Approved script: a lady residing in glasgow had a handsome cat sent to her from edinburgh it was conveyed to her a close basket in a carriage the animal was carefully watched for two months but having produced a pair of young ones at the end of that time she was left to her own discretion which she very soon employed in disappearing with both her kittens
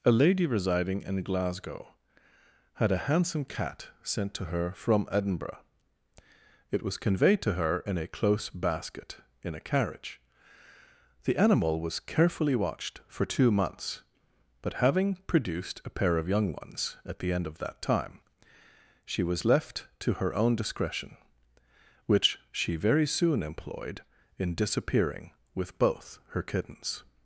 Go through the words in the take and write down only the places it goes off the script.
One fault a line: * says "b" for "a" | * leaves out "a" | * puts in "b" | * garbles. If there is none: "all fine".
* puts in "in"